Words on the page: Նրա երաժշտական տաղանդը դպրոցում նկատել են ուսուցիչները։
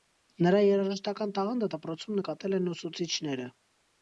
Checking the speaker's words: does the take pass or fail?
pass